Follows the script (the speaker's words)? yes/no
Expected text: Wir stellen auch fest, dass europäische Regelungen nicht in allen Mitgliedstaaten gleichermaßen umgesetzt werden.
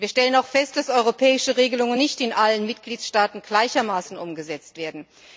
yes